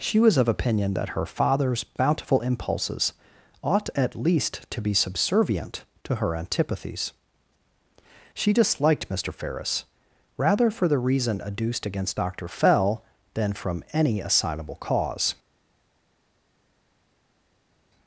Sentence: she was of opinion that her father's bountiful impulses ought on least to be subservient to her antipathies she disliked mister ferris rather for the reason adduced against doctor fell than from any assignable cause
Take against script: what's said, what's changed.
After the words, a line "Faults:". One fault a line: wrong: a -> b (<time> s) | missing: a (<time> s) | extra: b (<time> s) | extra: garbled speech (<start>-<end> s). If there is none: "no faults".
she was of opinion that her father's bountiful impulses ought at least to be subservient to her antipathies she disliked mister ferris rather for the reason adduced against doctor fell than from any assignable cause
Faults:
wrong: on -> at (4.0 s)